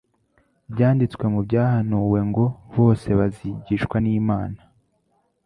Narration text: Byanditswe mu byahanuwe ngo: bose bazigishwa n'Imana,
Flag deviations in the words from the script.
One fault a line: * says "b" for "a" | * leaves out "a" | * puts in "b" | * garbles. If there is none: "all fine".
all fine